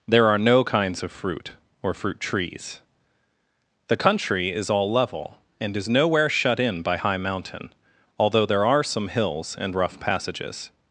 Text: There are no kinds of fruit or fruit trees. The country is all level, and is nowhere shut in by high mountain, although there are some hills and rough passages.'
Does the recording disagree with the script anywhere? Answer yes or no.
no